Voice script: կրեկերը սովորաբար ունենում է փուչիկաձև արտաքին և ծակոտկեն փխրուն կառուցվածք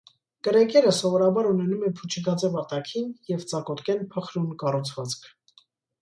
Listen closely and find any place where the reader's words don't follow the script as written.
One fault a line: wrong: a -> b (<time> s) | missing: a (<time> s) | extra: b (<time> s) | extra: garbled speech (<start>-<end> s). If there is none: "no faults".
no faults